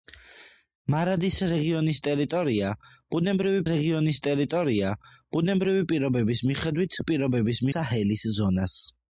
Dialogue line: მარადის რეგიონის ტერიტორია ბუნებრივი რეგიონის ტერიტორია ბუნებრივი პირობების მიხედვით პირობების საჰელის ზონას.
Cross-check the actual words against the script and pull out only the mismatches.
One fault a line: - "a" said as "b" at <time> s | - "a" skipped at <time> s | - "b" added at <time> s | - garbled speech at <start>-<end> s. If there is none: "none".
none